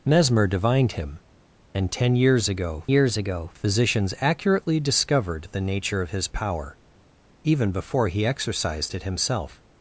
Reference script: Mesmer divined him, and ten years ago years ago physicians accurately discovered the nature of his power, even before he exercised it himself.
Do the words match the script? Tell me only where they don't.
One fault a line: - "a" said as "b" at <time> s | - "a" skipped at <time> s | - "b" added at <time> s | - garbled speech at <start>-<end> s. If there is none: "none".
none